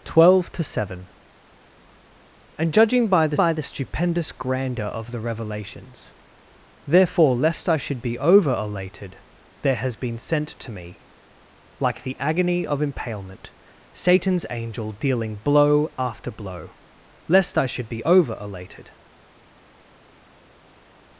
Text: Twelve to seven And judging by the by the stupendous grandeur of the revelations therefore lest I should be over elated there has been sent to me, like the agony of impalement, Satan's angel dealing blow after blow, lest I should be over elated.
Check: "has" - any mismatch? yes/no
no